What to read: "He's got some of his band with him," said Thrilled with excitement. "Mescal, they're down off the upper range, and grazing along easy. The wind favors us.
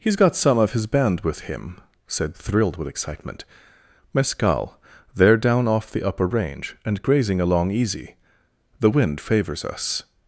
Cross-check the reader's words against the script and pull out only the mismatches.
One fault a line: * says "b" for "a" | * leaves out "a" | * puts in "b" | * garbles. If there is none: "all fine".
all fine